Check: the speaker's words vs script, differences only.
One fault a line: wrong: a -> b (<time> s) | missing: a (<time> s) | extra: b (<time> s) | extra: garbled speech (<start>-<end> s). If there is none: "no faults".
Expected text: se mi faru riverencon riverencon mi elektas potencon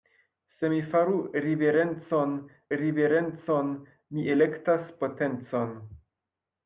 no faults